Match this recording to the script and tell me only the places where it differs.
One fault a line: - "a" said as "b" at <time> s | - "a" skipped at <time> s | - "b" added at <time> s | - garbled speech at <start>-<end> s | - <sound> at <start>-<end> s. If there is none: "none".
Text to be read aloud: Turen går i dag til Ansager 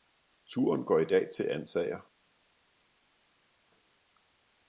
none